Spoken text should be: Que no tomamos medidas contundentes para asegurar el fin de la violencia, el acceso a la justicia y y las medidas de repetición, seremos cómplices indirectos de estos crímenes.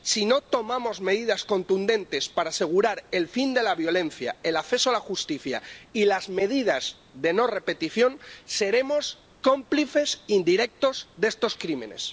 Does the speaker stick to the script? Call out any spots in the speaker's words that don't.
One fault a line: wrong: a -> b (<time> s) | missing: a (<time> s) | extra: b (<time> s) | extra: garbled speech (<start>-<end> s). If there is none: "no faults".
wrong: Que -> Si (0.0 s)
missing: y (6.0 s)
extra: no (7.3 s)